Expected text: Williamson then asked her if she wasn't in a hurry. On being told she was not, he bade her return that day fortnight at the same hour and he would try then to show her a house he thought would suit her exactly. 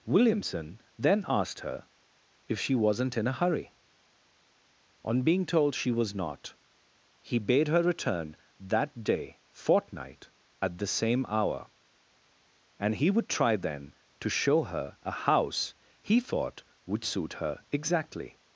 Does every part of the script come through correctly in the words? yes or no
yes